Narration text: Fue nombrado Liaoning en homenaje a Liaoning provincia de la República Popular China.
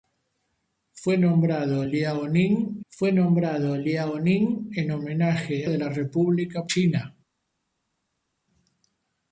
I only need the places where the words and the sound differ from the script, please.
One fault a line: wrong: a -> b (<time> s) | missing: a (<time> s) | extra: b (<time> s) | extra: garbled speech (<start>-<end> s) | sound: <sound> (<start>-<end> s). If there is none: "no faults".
wrong: en homenaje a Liaoning provincia -> fue nombrado Liaoning en homenaje (2.9 s)
missing: Popular (6.6 s)